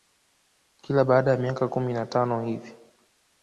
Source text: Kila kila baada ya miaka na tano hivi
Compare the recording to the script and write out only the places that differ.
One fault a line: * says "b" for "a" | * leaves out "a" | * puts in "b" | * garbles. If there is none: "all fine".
* leaves out "kila"
* puts in "kumi"